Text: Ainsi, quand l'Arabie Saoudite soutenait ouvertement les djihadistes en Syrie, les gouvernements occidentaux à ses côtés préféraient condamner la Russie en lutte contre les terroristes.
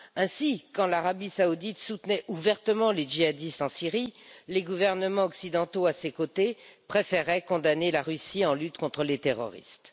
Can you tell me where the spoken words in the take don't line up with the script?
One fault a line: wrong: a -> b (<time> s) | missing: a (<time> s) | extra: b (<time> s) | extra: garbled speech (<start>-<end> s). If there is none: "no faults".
no faults